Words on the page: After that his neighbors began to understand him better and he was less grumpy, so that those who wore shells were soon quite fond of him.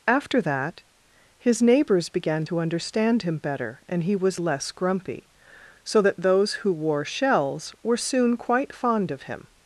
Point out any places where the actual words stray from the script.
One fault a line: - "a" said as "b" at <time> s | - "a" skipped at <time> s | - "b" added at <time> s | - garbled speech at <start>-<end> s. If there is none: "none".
none